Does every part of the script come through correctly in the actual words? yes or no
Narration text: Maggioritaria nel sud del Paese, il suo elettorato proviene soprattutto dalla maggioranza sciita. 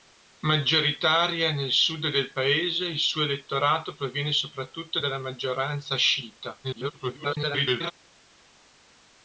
no